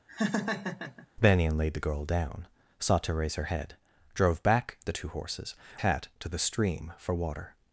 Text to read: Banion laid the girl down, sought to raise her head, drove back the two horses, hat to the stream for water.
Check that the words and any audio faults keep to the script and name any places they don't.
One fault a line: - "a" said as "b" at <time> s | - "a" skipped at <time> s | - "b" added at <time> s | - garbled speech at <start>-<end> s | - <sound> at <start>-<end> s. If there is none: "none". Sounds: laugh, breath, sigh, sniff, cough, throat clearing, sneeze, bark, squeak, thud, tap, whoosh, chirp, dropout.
- laugh at 0.1-1.1 s